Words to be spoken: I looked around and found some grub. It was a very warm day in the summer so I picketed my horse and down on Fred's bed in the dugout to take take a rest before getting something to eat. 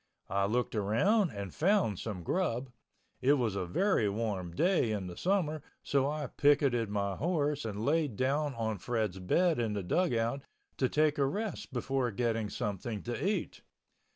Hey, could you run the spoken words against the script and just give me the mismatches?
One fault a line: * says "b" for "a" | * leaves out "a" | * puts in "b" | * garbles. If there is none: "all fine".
* puts in "laid"
* leaves out "take"